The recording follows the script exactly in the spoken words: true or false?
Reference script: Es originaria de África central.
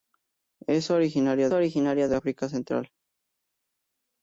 false